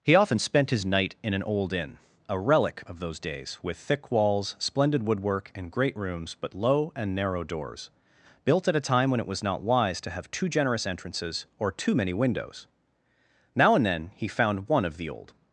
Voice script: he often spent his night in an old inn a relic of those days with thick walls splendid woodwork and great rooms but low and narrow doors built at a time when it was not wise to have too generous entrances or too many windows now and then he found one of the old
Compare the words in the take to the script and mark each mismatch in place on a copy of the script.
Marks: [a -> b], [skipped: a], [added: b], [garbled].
he often spent his night in an old inn a relic of those days with thick walls splendid woodwork and great rooms but low and narrow doors built at a time when it was not wise to have too generous entrances or too many windows now and then he found one of the old